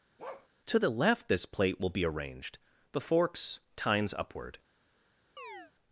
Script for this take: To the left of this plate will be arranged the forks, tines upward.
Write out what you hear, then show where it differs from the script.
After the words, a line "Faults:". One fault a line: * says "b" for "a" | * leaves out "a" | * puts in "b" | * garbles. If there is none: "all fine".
To the left this plate will be arranged the forks, tines upward.
Faults:
* leaves out "of"